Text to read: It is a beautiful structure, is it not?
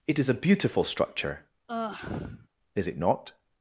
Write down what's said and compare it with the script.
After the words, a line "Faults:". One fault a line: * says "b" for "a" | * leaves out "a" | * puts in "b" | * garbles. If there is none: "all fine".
It is a beautiful structure, is it not?
Faults:
all fine